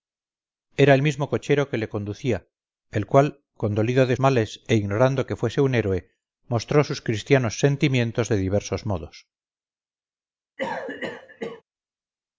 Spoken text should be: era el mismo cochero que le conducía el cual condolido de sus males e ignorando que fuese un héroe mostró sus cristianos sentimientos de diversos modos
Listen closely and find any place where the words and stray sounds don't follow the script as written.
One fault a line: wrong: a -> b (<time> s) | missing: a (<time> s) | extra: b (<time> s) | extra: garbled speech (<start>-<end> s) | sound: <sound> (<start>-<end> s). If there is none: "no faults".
missing: sus (4.2 s)
sound: cough (10.6-11.6 s)